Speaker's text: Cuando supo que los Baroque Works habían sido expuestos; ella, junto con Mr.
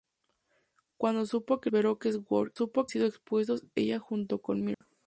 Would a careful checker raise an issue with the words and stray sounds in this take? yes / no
yes